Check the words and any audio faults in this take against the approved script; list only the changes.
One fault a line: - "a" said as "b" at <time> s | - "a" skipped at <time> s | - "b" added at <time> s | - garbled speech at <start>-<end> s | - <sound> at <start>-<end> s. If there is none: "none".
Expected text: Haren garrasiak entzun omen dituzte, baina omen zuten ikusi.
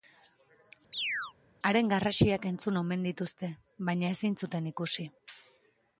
- chirp at 0.9-1.3 s
- "omen" said as "ezin" at 4.2 s